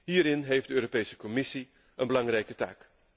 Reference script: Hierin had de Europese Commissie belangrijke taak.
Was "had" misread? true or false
true